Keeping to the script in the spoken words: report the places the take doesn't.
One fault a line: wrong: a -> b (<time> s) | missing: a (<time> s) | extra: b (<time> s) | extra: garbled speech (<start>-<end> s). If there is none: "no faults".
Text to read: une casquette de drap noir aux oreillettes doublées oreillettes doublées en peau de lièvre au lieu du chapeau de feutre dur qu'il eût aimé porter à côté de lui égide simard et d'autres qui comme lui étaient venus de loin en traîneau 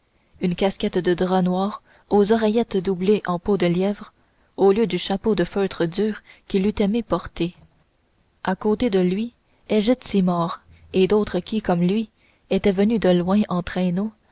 missing: oreillettes doublées (3.2 s)